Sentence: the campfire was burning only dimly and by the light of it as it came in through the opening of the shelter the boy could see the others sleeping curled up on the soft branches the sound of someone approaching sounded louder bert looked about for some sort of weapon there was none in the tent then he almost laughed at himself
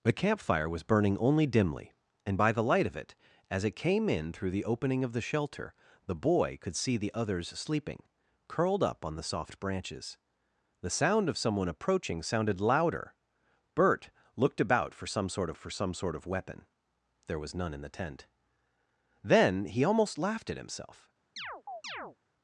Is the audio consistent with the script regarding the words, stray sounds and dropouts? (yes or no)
no